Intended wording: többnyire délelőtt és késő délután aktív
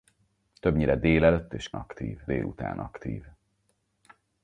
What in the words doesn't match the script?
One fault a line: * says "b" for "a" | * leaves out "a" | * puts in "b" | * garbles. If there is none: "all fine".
* says "aktív" for "késő"